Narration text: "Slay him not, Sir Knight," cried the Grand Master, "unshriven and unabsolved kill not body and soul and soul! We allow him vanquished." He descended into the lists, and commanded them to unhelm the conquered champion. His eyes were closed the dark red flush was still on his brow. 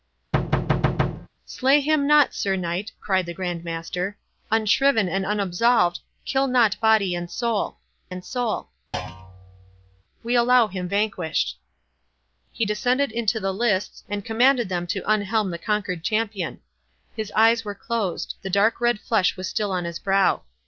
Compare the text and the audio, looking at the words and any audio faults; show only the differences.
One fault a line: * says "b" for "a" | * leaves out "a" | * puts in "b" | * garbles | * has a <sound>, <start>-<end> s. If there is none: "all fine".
* has a thud, 0.3-1.3 s
* has a thud, 8.9-10.0 s